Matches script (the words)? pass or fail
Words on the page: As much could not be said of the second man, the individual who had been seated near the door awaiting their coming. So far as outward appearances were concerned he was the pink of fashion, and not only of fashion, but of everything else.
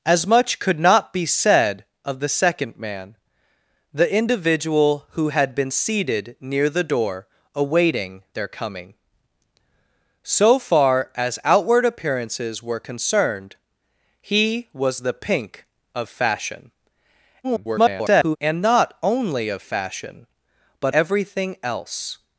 fail